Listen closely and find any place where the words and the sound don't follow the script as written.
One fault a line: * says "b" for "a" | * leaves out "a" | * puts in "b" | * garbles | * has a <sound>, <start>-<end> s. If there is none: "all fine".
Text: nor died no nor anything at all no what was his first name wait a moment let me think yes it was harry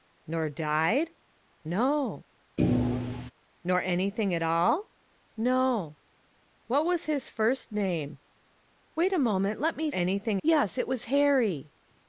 * has a thud, 2.6-3.3 s
* says "anything" for "think"